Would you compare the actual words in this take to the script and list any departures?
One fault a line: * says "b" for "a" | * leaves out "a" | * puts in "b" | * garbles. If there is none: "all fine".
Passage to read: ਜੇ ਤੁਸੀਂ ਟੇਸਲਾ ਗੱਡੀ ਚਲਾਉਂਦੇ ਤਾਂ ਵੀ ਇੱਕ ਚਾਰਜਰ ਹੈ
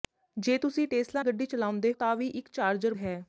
all fine